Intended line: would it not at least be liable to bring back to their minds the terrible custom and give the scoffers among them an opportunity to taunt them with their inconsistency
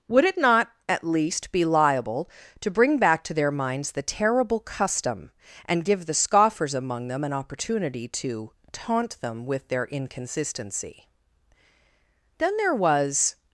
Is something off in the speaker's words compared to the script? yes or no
yes